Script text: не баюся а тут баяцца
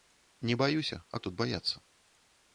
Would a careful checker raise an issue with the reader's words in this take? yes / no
no